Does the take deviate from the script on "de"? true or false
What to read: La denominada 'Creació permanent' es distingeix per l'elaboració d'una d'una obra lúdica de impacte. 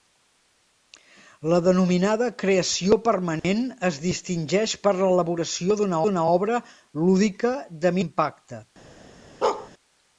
false